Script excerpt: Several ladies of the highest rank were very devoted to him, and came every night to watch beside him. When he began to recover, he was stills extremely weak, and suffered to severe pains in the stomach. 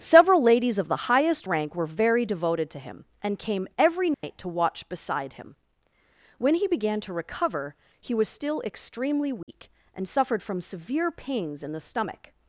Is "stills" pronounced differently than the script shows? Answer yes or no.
yes